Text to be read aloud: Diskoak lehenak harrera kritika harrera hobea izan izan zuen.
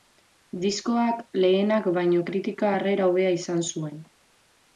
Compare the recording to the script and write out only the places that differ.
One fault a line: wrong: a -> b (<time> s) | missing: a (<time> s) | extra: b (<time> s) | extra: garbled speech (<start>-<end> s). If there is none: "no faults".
wrong: harrera -> baino (2.0 s)
missing: izan (3.7 s)